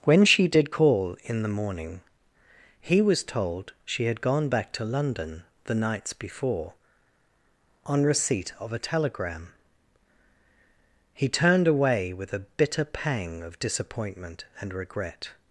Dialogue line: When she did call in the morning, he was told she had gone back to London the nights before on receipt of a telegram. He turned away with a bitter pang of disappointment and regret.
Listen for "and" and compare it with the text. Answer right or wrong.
right